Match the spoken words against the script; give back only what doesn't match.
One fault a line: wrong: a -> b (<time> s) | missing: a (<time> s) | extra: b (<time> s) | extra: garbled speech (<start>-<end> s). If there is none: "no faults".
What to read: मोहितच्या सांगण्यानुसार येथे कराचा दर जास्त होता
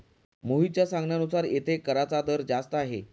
wrong: होता -> आहे (2.8 s)